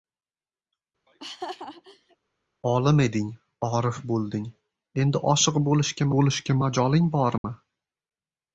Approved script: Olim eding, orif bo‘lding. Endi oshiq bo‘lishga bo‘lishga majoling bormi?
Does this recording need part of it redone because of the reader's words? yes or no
no